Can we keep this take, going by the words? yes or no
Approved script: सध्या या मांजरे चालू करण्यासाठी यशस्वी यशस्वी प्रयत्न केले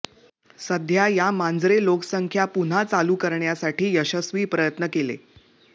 no